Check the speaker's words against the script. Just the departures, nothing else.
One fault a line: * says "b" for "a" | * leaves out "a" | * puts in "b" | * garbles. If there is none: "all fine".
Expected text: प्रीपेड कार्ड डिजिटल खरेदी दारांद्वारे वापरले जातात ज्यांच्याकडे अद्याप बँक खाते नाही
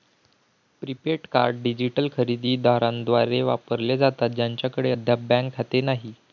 all fine